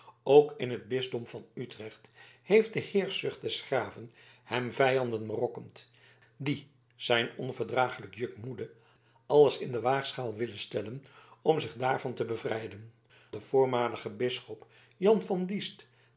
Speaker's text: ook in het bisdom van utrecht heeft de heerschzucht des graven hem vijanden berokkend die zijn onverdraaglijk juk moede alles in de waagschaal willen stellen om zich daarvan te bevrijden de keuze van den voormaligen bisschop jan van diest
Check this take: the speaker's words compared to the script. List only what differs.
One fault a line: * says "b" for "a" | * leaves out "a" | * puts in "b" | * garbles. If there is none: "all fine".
* leaves out "de keuze van"